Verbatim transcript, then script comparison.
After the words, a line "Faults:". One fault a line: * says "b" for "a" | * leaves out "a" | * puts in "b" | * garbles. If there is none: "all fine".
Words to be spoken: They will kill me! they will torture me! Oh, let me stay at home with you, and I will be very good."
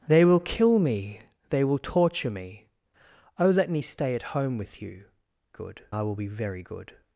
They will kill me! they will torture me! Oh, let me stay at home with you, good I will be very good."
Faults:
* says "good" for "and"